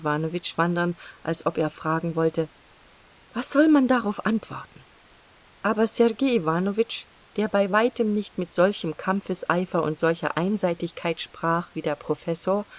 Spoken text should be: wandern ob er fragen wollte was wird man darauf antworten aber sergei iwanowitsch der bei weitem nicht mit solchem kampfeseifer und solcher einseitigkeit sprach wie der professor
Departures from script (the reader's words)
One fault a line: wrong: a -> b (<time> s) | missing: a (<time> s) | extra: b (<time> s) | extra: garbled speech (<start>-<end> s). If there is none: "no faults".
extra: als (1.2 s)
wrong: wird -> soll (3.5 s)